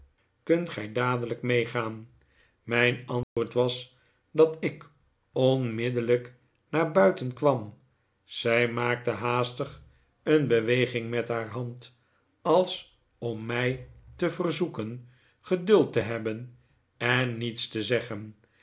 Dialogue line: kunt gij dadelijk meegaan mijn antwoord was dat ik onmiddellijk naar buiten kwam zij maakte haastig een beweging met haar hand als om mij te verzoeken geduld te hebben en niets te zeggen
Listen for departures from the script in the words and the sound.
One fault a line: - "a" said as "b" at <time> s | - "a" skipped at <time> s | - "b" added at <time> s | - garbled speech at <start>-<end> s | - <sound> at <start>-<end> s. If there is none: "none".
- dropout at 3.2-3.4 s